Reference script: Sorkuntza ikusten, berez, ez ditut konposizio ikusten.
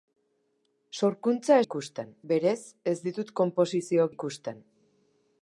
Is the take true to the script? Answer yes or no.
yes